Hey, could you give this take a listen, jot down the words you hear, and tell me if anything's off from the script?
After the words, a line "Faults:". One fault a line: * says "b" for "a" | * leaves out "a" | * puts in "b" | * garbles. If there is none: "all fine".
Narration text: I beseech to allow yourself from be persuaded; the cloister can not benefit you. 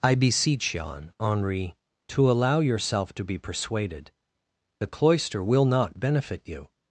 I beseech yon, Henri, to allow yourself to be persuaded; the cloister will not benefit you.
Faults:
* puts in "yon Henri"
* says "to" for "from"
* says "will" for "can"